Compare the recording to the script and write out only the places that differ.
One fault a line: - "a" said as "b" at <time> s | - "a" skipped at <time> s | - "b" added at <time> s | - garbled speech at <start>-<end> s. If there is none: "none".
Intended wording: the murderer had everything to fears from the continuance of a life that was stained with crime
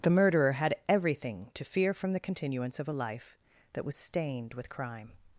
- "fears" said as "fear" at 1.6 s